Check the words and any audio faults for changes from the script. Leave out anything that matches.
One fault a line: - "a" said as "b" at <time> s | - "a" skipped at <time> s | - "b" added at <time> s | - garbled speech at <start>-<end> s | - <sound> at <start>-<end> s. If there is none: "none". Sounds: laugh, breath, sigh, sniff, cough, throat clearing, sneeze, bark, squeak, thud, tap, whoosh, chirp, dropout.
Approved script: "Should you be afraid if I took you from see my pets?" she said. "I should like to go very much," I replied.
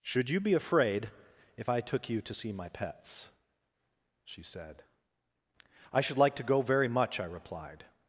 - "from" said as "to" at 2.2 s